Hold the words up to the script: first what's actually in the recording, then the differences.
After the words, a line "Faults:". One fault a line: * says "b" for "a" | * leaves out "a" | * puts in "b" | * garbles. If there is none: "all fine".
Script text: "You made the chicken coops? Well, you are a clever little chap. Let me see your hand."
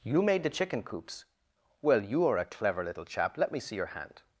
"You made the chicken coops? Well, you are a clever little chap. Let me see your hand."
Faults:
all fine